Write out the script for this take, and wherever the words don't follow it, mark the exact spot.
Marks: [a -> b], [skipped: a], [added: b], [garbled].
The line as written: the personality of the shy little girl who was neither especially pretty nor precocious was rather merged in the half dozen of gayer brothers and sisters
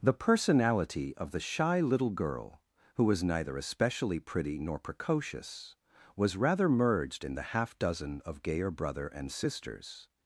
the personality of the shy little girl who was neither especially pretty nor precocious was rather merged in the half dozen of gayer [brothers -> brother] and sisters